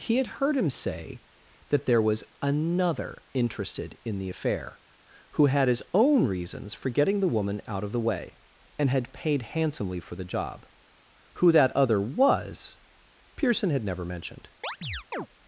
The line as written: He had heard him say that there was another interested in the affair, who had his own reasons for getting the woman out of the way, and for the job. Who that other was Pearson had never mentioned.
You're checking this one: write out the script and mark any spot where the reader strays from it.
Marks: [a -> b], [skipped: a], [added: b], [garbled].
He had heard him say that there was another interested in the affair, who had his own reasons for getting the woman out of the way, and [added: had paid handsomely] for the job. Who that other was Pearson had never mentioned.